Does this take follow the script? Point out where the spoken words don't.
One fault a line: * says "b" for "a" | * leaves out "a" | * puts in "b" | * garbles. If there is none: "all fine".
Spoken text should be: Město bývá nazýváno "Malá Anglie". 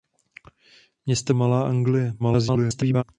* leaves out "bývá nazýváno"
* garbles